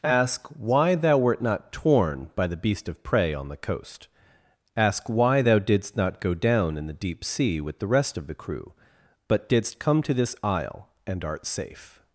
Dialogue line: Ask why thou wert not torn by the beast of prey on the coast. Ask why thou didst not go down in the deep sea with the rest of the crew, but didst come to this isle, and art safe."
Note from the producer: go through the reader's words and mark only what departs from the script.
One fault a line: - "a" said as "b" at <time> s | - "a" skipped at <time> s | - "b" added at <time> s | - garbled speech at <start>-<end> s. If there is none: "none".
none